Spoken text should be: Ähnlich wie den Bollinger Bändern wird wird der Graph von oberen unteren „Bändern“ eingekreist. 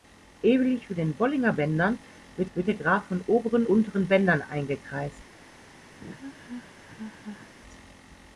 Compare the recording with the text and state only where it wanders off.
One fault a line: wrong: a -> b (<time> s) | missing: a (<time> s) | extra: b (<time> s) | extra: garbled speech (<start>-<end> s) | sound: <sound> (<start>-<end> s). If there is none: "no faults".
sound: laugh (6.0-7.5 s)